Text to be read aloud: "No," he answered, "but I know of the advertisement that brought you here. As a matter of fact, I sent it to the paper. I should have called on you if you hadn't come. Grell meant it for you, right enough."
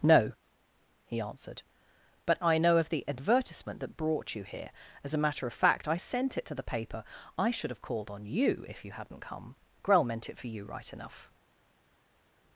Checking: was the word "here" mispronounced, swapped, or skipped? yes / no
no